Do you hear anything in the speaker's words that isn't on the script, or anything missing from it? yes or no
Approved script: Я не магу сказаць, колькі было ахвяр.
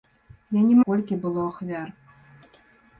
yes